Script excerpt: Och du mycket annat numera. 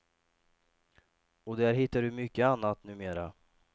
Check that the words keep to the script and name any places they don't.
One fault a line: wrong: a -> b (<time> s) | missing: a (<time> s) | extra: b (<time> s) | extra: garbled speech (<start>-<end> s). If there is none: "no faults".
extra: där hittar (1.6 s)